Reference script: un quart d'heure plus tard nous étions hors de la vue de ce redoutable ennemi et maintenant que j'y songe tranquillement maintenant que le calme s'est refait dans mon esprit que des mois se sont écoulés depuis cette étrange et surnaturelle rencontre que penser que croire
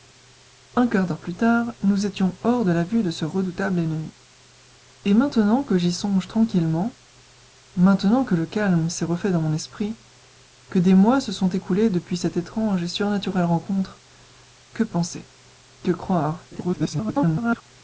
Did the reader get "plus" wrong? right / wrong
right